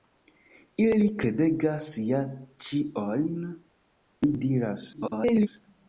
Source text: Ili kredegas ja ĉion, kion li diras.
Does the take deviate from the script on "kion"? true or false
true